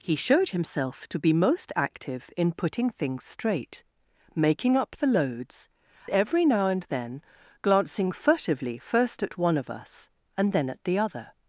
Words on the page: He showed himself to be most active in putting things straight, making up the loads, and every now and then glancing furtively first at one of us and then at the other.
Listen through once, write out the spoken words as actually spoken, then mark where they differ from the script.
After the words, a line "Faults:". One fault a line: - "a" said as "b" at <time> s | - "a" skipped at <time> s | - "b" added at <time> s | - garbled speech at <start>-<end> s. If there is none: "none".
He showed himself to be most active in putting things straight, making up the loads, every now and then glancing furtively first at one of us and then at the other.
Faults:
- "and" skipped at 5.7 s